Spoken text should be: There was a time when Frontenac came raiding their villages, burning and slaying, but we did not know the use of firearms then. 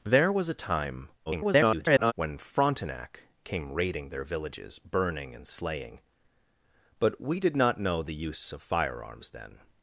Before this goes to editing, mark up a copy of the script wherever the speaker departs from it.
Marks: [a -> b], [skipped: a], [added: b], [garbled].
There was a time [garbled] when Frontenac came raiding their villages, burning and slaying, but we did not know the use of firearms then.